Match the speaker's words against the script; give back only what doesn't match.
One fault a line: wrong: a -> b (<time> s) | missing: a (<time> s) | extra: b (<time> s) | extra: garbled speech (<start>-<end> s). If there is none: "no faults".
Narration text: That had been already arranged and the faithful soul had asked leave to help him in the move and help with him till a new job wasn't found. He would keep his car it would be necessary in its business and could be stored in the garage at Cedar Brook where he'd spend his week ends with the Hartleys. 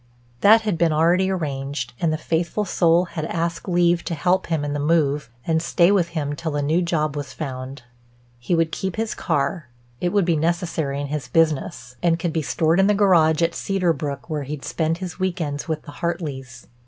wrong: help -> stay (5.6 s)
wrong: wasn't -> was (7.2 s)
wrong: its -> his (11.1 s)